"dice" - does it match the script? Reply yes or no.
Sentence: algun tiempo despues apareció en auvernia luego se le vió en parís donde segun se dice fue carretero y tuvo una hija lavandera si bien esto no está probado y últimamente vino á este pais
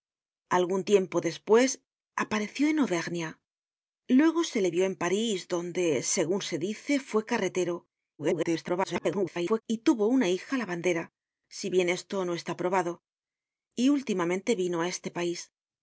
yes